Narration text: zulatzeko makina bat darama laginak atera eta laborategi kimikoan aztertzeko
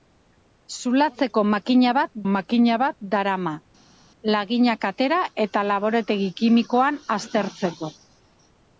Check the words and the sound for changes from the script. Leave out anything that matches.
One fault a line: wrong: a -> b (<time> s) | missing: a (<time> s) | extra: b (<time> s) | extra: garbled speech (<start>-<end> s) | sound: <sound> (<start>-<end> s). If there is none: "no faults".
extra: makina bat (2.3 s)